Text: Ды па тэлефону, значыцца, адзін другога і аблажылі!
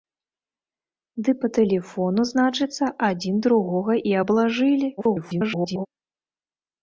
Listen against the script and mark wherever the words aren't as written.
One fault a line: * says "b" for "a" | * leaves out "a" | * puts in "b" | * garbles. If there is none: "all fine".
* garbles